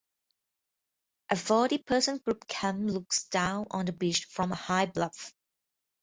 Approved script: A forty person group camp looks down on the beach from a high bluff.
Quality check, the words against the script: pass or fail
pass